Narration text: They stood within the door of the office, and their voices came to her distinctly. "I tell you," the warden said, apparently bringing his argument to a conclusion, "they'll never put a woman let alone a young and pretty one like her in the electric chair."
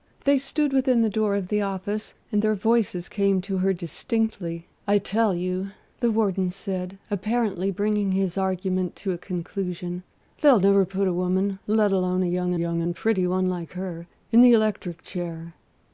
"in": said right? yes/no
yes